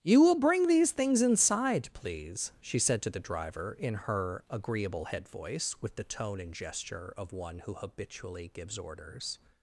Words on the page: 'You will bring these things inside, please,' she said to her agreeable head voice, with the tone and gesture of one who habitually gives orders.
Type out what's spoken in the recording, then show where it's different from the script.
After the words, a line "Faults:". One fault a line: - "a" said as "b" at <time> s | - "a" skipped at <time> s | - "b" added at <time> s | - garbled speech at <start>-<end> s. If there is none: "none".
'You will bring these things inside, please,' she said to the driver, in her agreeable head voice, with the tone and gesture of one who habitually gives orders.
Faults:
- "the driver in" added at 3.1 s